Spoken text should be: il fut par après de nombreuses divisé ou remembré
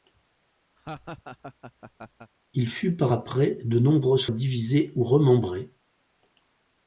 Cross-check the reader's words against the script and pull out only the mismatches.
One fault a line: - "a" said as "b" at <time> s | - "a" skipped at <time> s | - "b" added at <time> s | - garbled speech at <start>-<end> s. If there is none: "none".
none